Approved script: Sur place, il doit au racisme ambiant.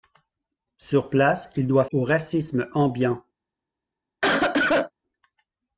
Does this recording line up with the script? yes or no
yes